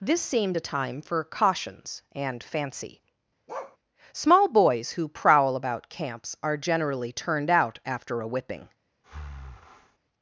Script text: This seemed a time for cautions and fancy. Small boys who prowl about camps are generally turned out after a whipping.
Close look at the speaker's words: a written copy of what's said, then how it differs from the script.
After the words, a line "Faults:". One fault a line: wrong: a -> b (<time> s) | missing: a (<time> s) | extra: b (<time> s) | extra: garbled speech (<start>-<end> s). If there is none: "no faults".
This seemed a time for cautions and fancy. Small boys who prowl about camps are generally turned out after a whipping.
Faults:
no faults